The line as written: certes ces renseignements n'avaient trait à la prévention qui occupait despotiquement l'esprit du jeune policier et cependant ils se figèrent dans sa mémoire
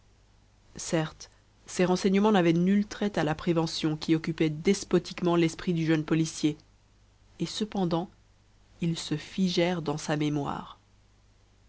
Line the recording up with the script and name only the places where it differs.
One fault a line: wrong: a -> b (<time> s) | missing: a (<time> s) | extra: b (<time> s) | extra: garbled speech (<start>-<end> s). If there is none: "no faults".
extra: nul (2.5 s)